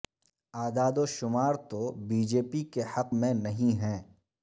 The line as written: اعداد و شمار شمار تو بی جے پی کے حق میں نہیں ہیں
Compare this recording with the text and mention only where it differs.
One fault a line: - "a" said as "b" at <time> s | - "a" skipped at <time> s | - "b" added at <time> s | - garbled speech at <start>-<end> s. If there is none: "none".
- "شمار" skipped at 1.5 s